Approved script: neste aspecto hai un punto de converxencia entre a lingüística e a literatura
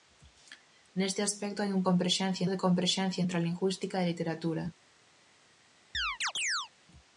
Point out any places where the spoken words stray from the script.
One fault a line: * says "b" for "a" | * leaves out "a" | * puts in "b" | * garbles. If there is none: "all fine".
* says "converxencia" for "punto"